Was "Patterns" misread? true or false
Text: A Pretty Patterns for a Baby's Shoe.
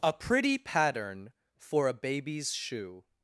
true